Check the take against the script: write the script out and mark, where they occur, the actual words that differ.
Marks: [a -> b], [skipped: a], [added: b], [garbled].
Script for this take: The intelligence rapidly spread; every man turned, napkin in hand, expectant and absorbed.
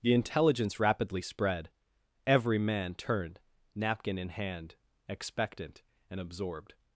The intelligence rapidly spread; every man turned, napkin in hand, expectant and absorbed.